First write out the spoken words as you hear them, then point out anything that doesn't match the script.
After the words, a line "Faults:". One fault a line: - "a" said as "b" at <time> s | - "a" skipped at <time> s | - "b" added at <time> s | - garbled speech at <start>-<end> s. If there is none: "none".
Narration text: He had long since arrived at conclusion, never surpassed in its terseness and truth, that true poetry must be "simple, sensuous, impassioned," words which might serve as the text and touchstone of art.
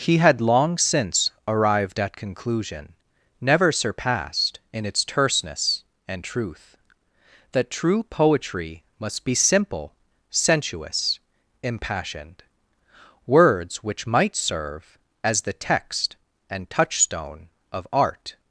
He had long since arrived at conclusion, never surpassed in its terseness and truth, that true poetry must be "simple, sensuous, impassioned," words which might serve as the text and touchstone of art.
Faults:
none